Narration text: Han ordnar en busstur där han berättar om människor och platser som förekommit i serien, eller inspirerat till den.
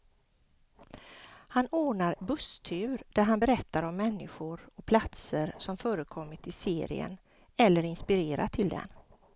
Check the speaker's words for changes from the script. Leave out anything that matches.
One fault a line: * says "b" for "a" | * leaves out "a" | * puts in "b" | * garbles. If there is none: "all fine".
* leaves out "en"